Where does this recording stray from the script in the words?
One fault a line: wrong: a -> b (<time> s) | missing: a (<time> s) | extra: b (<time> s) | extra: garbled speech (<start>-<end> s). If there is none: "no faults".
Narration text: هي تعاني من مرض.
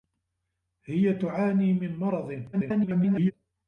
extra: garbled speech (2.5-3.3 s)